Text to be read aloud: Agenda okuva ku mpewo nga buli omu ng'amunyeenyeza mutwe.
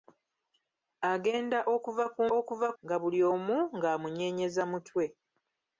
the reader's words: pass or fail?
fail